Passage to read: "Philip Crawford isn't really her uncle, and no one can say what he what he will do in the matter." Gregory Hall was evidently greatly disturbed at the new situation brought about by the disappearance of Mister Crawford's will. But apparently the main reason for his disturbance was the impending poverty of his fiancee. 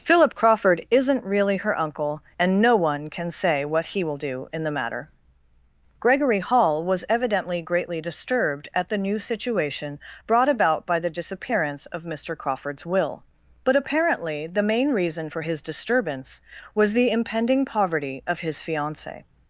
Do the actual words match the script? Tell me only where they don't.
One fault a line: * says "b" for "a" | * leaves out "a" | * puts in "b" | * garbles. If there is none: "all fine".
* leaves out "what he"